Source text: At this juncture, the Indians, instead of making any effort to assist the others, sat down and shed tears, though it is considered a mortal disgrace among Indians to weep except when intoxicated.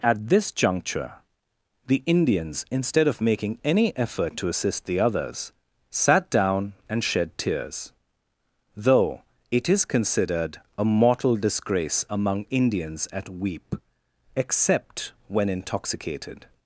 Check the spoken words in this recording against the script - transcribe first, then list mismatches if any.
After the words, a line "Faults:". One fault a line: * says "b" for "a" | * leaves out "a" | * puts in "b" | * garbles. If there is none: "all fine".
At this juncture, the Indians, instead of making any effort to assist the others, sat down and shed tears, though it is considered a mortal disgrace among Indians at weep except when intoxicated.
Faults:
* says "at" for "to"